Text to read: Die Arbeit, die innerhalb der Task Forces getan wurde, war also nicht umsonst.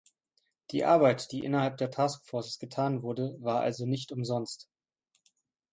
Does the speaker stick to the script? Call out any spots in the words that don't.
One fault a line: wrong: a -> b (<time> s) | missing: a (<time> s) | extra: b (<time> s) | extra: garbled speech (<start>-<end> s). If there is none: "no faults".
no faults